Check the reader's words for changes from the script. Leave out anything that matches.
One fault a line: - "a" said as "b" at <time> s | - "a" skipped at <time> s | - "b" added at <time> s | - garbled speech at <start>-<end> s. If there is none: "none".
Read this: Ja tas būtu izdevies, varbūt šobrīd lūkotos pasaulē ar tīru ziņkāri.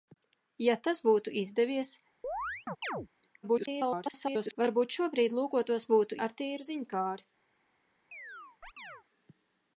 - garbled speech at 3.4-4.6 s
- "pasaulē" said as "būtu" at 5.9 s